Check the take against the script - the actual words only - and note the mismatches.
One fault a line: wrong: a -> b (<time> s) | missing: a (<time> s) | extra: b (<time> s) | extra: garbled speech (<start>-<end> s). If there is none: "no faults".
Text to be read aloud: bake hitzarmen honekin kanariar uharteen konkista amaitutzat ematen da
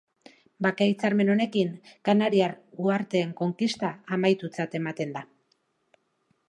no faults